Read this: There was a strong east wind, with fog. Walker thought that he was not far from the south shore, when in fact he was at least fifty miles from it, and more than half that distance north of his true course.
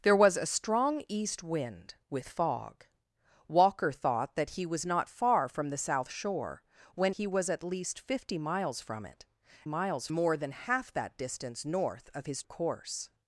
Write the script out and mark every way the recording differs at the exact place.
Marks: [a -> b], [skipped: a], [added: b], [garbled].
There was a strong east wind, with fog. Walker thought that he was not far from the south shore, when [skipped: in fact] he was at least fifty miles from it, [and -> miles] more than half that distance north of his [skipped: true] course.